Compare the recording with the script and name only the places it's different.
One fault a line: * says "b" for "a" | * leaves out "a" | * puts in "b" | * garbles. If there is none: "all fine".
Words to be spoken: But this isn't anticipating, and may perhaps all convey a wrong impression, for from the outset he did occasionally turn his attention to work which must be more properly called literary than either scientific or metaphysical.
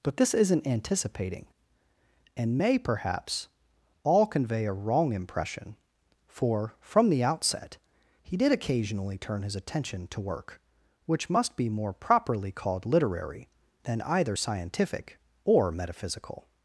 all fine